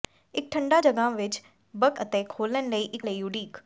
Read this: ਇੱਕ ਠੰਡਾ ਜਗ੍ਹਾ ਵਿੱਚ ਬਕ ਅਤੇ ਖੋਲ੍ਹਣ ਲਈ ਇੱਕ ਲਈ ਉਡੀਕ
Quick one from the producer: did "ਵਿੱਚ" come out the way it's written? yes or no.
yes